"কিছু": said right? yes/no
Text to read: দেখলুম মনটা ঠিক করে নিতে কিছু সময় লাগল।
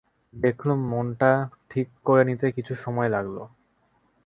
yes